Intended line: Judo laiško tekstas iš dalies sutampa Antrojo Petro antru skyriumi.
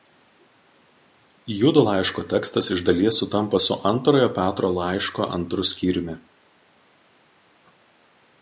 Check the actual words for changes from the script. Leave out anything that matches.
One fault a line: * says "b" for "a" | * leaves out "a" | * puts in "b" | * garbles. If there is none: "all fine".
* puts in "su"
* puts in "laiško"